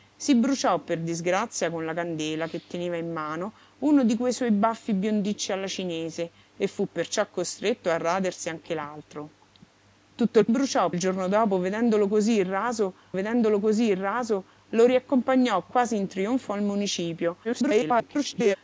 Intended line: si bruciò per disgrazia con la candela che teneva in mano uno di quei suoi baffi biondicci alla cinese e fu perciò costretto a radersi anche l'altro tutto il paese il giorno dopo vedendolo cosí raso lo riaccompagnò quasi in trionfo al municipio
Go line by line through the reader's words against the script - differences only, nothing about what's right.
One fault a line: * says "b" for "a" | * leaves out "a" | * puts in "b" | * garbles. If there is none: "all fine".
* says "bruciò" for "paese"
* puts in "vedendolo cosí raso"
* garbles